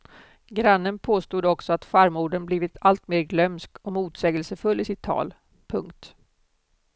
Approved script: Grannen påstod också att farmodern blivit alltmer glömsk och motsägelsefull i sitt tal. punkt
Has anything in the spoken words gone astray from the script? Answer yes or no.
no